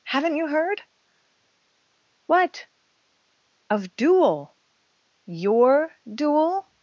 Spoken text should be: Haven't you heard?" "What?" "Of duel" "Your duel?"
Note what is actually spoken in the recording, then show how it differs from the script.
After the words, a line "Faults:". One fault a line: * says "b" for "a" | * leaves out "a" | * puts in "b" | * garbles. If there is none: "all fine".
Haven't you heard?" "What?" "Of duel" "Your duel?"
Faults:
all fine